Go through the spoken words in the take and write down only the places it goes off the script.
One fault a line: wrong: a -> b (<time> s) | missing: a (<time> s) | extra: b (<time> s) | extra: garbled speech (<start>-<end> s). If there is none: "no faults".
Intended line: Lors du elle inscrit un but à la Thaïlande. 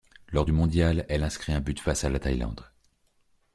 extra: mondial (0.5 s)
extra: face (1.8 s)